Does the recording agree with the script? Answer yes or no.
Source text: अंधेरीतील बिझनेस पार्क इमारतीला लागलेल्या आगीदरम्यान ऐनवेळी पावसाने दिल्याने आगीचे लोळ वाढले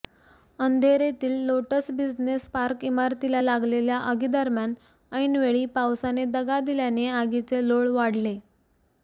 no